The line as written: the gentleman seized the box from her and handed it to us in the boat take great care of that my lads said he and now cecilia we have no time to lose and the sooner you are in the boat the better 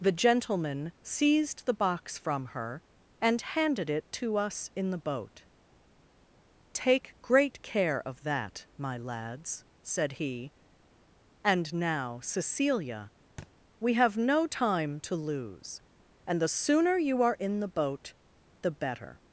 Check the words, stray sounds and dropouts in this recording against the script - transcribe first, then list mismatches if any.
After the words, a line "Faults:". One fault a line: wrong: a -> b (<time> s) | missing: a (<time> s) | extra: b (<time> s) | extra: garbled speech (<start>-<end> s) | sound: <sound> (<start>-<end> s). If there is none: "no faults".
the gentleman seized the box from her and handed it to us in the boat take great care of that my lads said he and now cecilia we have no time to lose and the sooner you are in the boat the better
Faults:
sound: thud (13.4-13.5 s)